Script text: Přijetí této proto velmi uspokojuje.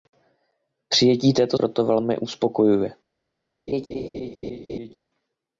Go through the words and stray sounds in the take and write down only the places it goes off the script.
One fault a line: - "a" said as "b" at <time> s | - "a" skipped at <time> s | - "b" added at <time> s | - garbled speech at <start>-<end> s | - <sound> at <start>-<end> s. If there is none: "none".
- laugh at 3.7-5.0 s